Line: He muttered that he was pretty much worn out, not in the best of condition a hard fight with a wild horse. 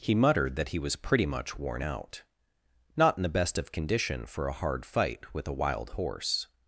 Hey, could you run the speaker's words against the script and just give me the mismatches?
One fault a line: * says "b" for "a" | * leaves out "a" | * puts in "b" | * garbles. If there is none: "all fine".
* puts in "for"